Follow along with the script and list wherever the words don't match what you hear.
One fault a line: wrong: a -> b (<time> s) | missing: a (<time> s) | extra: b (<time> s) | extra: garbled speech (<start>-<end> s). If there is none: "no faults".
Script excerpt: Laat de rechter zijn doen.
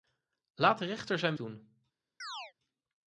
no faults